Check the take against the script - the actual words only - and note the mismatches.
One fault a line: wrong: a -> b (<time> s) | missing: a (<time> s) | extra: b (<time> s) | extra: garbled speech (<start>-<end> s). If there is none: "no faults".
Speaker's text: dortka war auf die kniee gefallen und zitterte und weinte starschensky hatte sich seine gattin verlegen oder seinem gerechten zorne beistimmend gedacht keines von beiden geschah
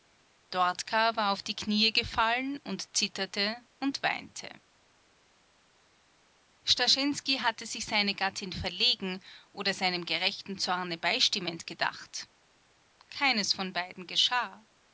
no faults